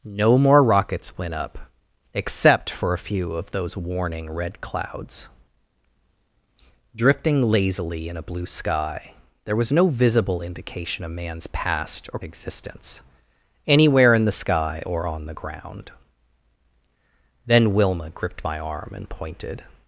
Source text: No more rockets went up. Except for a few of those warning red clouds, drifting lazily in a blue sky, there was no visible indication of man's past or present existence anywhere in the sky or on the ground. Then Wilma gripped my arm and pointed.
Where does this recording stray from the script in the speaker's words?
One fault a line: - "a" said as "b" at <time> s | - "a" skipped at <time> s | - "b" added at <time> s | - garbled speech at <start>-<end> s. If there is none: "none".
- "present" skipped at 12.2 s